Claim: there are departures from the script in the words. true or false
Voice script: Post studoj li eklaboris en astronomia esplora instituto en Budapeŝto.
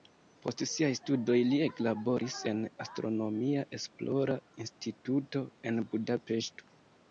true